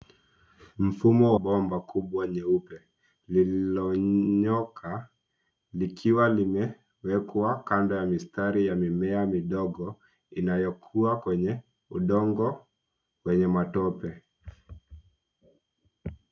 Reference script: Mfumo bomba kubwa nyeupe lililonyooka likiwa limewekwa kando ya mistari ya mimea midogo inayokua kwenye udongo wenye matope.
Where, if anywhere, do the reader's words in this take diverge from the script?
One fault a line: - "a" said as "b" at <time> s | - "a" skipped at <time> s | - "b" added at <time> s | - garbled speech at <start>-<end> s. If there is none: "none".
none